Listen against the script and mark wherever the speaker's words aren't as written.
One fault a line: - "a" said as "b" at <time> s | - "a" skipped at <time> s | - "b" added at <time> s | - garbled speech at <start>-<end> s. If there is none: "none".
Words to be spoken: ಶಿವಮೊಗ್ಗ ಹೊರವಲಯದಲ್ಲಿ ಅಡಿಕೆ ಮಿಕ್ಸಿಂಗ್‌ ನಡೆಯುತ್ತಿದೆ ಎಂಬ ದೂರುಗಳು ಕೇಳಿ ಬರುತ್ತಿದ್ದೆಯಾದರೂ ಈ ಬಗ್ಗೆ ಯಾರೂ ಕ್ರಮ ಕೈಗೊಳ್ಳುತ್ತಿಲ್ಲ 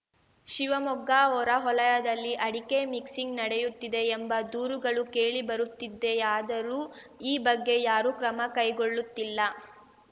none